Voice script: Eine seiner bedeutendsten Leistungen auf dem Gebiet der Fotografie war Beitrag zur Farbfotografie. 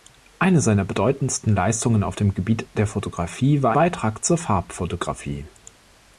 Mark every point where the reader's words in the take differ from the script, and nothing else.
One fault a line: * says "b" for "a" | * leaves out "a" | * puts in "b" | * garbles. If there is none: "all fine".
all fine